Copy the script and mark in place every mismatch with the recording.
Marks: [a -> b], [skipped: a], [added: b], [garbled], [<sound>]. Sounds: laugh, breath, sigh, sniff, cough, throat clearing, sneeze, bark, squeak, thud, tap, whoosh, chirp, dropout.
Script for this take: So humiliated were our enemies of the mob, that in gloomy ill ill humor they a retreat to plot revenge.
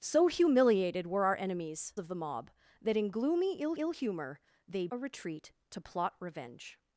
So humiliated were our enemies of the mob, that in gloomy ill ill humor they a retreat to plot revenge.